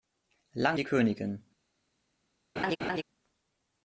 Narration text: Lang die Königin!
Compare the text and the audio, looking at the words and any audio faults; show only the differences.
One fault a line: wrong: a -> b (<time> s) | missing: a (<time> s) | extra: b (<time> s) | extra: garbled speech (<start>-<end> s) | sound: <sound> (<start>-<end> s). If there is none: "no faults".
sound: laugh (2.6-3.0 s)